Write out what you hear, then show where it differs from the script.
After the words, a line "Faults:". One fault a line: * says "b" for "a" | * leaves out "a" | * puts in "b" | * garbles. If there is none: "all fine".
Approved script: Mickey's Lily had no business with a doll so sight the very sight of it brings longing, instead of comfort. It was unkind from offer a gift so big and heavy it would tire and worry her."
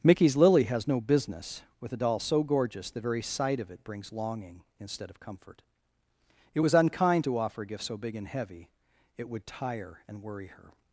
Mickey's Lily has no business with a doll so gorgeous the very sight of it brings longing, instead of comfort. It was unkind to offer a gift so big and heavy it would tire and worry her."
Faults:
* says "has" for "had"
* says "gorgeous" for "sight"
* says "to" for "from"